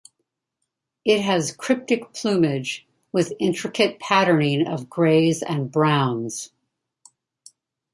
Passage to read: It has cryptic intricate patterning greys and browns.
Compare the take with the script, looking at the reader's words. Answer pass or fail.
fail